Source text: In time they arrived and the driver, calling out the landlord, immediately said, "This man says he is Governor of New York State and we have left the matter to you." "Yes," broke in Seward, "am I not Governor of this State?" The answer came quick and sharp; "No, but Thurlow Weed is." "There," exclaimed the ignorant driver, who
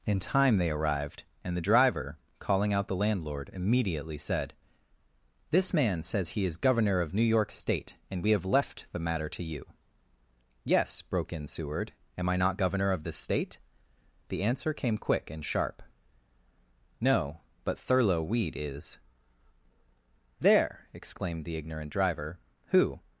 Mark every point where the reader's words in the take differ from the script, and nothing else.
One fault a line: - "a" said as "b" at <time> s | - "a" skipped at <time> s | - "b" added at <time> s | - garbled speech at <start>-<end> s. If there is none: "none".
none